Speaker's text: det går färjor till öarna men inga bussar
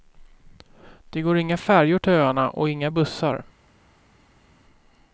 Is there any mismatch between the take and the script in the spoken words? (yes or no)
yes